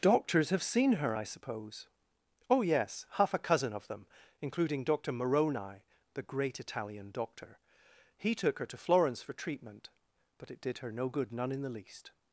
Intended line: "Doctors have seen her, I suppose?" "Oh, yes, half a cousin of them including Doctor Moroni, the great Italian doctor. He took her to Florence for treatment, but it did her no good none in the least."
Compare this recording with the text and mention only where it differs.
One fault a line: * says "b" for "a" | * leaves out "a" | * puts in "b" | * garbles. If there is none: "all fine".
all fine